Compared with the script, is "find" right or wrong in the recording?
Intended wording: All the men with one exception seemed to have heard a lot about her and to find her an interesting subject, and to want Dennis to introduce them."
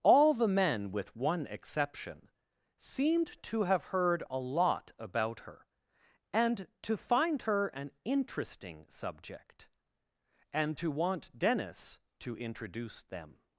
right